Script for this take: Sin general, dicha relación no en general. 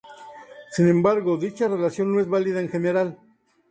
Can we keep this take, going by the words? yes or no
no